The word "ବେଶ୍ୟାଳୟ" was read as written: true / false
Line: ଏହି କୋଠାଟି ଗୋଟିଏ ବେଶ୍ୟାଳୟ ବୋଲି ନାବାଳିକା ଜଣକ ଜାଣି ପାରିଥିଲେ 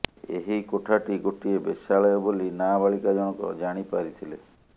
true